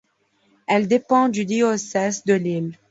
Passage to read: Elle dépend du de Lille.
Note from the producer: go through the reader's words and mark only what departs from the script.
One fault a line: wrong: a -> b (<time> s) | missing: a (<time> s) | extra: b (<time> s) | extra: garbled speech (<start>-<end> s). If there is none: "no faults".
extra: diocèse (1.4 s)